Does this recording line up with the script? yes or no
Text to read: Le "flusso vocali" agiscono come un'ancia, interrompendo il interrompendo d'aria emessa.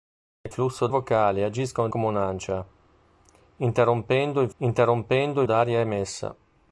yes